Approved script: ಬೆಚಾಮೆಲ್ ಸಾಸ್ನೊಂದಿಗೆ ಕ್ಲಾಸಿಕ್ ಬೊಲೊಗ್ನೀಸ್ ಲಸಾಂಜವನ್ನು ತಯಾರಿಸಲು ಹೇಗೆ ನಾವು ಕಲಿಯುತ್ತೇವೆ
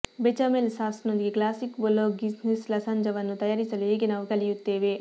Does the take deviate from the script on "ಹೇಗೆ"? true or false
false